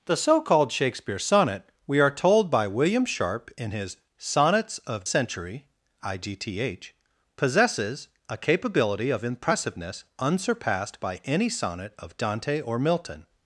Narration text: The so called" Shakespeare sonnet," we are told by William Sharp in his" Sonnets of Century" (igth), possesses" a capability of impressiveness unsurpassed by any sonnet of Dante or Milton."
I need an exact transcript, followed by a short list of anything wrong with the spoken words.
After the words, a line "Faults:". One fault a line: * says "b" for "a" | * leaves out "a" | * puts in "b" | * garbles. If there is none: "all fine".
The so called" Shakespeare sonnet," we are told by William Sharp in his" Sonnets of Century" (igth), possesses" a capability of impressiveness unsurpassed by any sonnet of Dante or Milton."
Faults:
all fine